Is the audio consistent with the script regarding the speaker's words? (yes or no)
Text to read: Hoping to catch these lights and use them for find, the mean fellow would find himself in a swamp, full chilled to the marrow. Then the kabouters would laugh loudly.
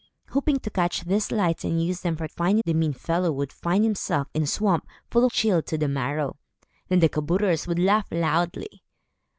yes